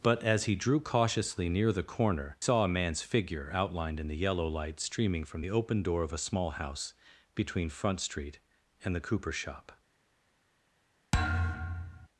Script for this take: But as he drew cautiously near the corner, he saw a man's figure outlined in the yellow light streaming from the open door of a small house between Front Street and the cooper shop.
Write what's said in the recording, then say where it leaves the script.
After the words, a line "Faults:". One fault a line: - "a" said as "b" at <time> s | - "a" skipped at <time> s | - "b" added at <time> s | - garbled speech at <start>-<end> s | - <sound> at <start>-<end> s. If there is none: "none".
But as he drew cautiously near the corner, saw a man's figure outlined in the yellow light streaming from the open door of a small house between Front Street and the cooper shop.
Faults:
- "he" skipped at 2.4 s
- thud at 11.1-12.1 s